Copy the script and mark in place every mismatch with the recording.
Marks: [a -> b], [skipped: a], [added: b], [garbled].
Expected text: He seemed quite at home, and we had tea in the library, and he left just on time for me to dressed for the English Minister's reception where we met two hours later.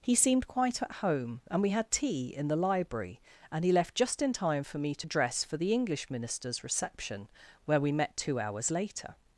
He seemed quite at home, and we had tea in the library, and he left just [on -> in] time for me to [dressed -> dress] for the English Minister's reception where we met two hours later.